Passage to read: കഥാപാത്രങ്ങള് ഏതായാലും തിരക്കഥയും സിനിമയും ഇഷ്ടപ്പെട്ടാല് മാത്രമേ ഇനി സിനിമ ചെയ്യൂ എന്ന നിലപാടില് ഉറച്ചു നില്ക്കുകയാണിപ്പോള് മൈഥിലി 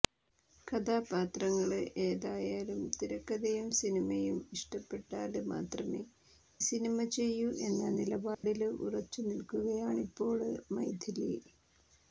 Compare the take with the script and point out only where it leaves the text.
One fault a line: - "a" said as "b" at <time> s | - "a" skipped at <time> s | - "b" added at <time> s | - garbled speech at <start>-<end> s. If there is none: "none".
- "ഇനി" skipped at 6.0 s